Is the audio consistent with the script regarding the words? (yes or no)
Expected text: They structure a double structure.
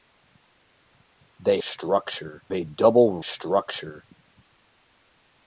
yes